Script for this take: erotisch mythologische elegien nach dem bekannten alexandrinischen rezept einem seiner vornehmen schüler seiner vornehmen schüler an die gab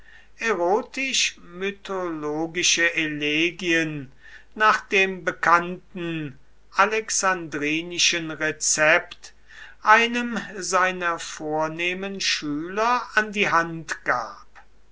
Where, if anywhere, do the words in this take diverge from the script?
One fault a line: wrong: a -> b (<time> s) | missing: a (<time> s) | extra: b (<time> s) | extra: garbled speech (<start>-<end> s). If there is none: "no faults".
missing: seiner vornehmen schüler (13.0 s)
extra: hand (13.5 s)